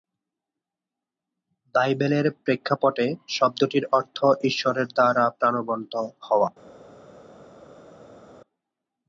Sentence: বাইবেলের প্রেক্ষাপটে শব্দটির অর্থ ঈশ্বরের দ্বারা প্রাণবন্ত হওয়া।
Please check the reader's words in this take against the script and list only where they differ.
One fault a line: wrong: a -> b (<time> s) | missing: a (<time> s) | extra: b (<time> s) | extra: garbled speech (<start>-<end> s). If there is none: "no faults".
no faults